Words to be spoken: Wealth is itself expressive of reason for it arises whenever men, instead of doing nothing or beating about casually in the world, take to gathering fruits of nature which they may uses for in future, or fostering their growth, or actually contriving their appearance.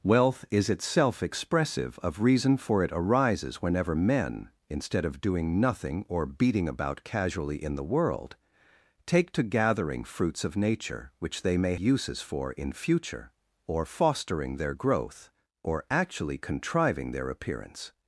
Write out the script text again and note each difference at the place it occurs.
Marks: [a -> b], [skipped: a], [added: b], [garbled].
Wealth is itself expressive of reason for it arises whenever men, instead of doing nothing or beating about casually in the world, take to gathering fruits of nature which they may uses for in future, or fostering their growth, or actually contriving their appearance.